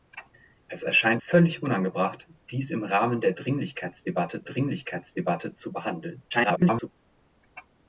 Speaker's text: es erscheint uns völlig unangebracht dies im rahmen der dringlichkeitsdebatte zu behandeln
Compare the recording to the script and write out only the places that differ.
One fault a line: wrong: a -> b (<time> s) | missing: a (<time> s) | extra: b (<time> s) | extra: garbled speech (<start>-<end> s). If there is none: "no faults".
missing: uns (1.2 s)
extra: dringlichkeitsdebatte (4.4 s)
extra: garbled speech (6.3-6.9 s)